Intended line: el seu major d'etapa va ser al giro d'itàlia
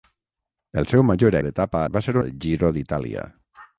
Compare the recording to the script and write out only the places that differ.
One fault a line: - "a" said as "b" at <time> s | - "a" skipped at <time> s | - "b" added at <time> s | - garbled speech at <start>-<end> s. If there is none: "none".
none